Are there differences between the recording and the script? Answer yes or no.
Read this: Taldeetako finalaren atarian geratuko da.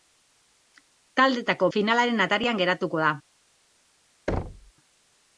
no